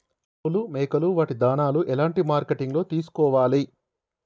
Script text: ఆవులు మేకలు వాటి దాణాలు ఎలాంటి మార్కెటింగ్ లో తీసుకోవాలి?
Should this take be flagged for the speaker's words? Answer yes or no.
no